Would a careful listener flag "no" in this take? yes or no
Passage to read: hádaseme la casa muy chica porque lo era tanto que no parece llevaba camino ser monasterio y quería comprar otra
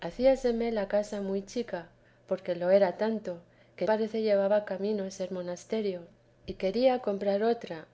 yes